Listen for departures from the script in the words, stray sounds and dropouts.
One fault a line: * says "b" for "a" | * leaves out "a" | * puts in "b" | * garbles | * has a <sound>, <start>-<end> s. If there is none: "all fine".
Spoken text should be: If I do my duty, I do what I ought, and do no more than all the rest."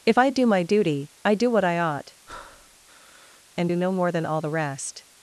* has a breath, 2.3-3.4 s